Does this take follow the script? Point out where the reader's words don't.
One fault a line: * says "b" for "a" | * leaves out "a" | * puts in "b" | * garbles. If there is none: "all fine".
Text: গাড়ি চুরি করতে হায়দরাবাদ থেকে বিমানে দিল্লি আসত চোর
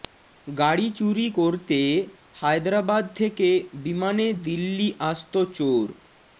all fine